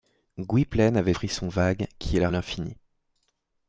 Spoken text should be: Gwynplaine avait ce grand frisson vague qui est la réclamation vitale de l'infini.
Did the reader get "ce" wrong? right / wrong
wrong